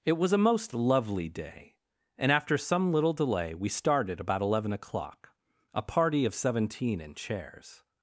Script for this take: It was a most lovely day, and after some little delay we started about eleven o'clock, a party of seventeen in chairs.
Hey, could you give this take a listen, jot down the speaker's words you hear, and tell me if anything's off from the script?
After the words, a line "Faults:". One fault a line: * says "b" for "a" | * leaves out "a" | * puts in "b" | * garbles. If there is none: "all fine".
It was a most lovely day, and after some little delay we started about eleven o'clock, a party of seventeen in chairs.
Faults:
all fine